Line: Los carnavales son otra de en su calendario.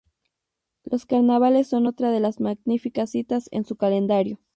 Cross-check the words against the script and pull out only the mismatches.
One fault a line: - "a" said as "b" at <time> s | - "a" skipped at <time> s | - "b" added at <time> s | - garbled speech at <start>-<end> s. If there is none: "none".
- "las magníficas citas" added at 2.2 s